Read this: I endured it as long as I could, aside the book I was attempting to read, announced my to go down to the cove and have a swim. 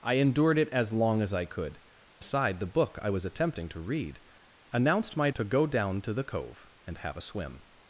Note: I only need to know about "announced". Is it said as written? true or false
true